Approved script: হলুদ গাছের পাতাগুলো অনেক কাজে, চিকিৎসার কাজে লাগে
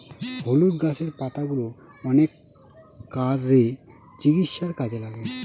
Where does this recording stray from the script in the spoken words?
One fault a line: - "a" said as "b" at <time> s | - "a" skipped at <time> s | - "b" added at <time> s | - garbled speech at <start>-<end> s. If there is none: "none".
none